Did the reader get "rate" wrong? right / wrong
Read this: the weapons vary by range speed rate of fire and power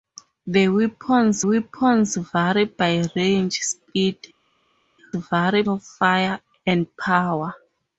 wrong